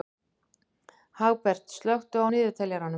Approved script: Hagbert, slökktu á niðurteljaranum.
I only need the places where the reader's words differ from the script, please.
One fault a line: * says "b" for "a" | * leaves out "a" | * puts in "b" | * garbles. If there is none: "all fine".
all fine